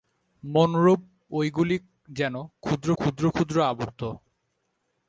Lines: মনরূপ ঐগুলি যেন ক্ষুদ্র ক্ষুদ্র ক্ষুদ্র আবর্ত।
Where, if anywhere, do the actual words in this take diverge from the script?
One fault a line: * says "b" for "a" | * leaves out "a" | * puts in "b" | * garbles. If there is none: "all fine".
all fine